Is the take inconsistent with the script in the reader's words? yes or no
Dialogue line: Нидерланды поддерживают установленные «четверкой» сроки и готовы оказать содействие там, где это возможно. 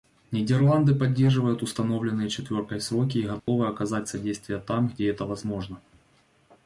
no